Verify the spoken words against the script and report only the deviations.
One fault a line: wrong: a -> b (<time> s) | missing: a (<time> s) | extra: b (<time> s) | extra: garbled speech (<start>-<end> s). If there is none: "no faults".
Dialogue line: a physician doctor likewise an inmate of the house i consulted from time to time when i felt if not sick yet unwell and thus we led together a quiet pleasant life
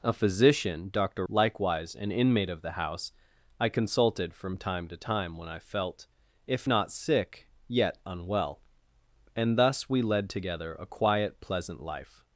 no faults